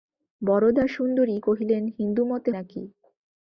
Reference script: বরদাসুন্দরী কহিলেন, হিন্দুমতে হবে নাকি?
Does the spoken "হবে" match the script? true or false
false